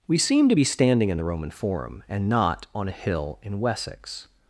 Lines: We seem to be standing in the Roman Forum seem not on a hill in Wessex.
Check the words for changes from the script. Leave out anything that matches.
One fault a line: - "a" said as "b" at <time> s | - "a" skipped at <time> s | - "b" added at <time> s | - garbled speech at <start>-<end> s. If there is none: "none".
- "seem" said as "and" at 2.1 s